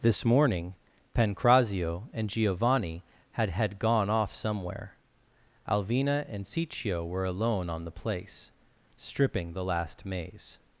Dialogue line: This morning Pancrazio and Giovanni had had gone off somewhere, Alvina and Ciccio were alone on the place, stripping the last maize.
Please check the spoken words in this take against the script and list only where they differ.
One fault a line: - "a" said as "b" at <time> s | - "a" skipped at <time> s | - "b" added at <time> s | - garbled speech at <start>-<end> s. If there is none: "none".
none